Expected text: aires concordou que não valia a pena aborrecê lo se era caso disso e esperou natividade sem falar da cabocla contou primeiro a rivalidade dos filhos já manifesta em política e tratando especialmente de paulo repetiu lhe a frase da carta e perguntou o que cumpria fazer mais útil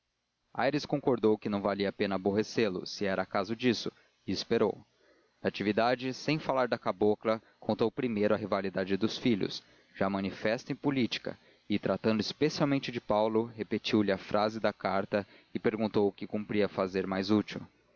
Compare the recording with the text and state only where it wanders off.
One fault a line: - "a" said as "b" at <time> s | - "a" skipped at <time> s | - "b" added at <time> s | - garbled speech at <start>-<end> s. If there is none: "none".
none